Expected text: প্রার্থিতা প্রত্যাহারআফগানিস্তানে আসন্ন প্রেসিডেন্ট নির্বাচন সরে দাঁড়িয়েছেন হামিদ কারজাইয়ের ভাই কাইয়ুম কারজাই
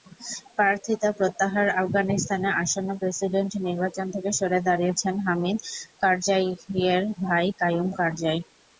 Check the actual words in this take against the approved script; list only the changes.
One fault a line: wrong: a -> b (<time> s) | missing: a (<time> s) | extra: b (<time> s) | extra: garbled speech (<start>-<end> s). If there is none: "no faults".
extra: থেকে (4.1 s)